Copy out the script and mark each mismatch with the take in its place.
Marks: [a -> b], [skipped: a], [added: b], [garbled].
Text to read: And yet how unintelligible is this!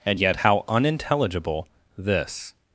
And yet how unintelligible [skipped: is] this!